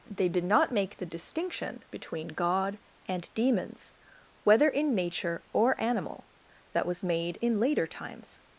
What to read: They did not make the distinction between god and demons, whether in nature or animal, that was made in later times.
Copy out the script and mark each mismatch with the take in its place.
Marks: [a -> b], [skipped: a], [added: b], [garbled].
They did not make the distinction between god and demons, whether in nature or animal, that was made in later times.